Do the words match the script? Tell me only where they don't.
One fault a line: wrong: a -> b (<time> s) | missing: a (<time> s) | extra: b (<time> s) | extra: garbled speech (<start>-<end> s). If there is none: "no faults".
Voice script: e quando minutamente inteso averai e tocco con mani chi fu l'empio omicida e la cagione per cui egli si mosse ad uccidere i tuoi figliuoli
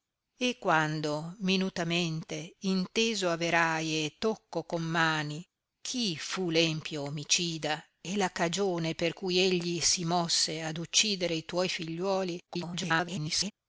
extra: garbled speech (12.5-13.5 s)